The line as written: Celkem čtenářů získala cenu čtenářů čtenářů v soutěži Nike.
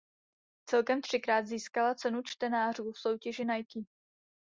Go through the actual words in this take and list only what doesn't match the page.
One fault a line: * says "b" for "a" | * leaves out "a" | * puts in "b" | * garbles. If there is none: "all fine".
* says "třikrát" for "čtenářů"
* leaves out "čtenářů"